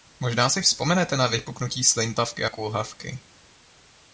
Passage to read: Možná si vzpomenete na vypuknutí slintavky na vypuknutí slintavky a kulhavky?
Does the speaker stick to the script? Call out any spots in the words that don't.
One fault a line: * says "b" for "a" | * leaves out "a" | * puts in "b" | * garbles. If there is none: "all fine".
* leaves out "na vypuknutí slintavky"